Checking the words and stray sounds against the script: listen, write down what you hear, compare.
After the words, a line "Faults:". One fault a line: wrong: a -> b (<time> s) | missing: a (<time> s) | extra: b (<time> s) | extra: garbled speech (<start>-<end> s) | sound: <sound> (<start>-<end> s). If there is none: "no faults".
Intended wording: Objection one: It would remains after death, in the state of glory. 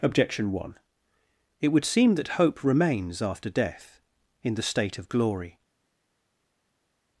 Objection one: It would seem that hope remains after death, in the state of glory.
Faults:
extra: seem that hope (1.8 s)